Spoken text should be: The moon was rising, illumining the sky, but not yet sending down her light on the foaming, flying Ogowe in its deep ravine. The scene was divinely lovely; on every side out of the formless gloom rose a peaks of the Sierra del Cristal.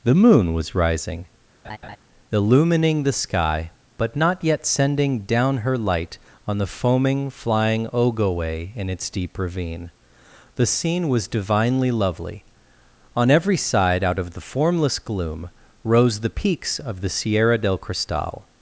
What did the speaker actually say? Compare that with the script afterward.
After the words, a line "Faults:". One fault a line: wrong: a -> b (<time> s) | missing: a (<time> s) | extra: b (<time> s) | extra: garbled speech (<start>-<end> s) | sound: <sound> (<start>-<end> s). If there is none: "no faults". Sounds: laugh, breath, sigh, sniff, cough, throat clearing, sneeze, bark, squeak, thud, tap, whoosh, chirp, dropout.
The moon was rising, illumining the sky, but not yet sending down her light on the foaming, flying Ogowe in its deep ravine. The scene was divinely lovely; on every side out of the formless gloom rose the peaks of the Sierra del Cristal.
Faults:
sound: laugh (1.6-2.0 s)
wrong: a -> the (16.2 s)